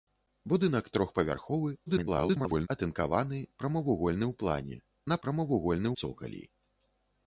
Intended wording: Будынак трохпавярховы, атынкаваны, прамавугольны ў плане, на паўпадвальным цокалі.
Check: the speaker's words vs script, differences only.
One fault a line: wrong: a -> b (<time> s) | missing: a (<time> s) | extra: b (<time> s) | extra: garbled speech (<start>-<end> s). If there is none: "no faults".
extra: garbled speech (1.9-2.7 s)
wrong: паўпадвальным -> прамавугольны (5.2 s)